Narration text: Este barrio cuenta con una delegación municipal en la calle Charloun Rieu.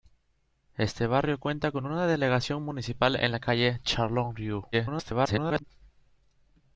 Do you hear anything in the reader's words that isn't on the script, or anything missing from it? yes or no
yes